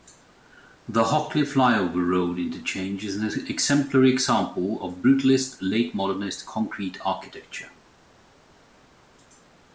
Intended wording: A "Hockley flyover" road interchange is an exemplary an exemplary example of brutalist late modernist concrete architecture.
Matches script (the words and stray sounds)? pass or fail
fail